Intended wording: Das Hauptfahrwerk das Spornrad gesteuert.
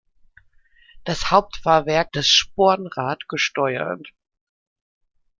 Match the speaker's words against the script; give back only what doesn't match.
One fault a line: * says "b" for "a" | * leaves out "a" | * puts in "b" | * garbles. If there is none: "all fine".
all fine